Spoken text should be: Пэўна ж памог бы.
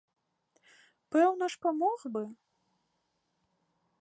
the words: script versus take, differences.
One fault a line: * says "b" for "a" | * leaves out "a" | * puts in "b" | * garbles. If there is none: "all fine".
all fine